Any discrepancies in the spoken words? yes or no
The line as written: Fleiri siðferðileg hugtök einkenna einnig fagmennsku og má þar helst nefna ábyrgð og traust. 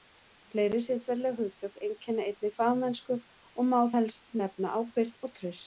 yes